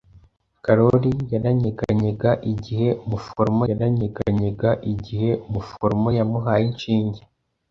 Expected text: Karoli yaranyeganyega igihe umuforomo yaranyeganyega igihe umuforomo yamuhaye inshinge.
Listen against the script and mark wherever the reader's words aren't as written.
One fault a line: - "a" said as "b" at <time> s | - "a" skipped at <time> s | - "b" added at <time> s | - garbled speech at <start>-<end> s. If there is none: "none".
none